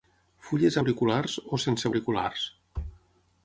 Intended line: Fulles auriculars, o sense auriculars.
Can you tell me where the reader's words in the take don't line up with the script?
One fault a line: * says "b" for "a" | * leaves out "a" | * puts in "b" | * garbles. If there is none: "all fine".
all fine